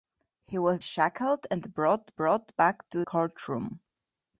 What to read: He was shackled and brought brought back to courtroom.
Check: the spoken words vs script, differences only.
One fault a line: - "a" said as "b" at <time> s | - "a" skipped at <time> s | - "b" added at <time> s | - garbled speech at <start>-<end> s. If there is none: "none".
none